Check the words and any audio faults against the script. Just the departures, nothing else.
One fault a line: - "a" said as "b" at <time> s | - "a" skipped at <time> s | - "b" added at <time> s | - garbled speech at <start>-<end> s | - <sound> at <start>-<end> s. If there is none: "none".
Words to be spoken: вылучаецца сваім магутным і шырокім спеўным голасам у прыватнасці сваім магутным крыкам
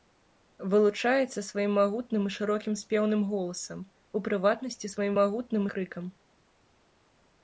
none